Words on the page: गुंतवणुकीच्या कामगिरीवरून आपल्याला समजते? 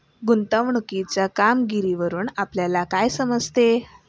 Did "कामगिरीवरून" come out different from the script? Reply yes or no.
no